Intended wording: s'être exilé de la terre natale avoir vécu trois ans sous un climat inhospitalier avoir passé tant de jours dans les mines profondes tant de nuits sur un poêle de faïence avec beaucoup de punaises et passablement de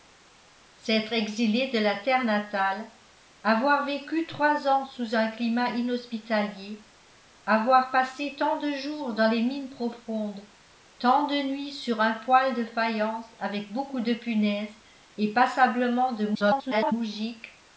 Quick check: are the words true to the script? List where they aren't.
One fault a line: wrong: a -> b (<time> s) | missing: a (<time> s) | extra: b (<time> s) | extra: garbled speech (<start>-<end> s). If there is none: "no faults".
extra: garbled speech (16.3-16.9 s)